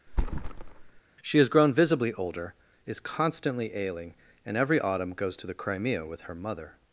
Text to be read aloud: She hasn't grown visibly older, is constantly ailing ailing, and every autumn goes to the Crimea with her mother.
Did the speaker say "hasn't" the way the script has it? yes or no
no